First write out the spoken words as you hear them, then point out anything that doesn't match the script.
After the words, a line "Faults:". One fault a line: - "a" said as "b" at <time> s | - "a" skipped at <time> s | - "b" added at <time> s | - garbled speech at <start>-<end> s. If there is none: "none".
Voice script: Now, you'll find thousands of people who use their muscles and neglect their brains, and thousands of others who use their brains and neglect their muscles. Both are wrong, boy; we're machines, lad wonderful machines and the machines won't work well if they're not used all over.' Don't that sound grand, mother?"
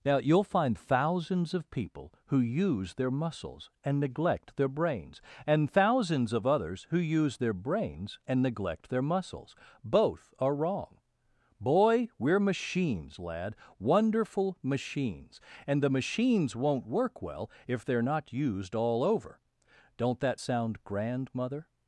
Now, you'll find thousands of people who use their muscles and neglect their brains, and thousands of others who use their brains and neglect their muscles. Both are wrong, boy; we're machines, lad wonderful machines and the machines won't work well if they're not used all over.' Don't that sound grand, mother?"
Faults:
none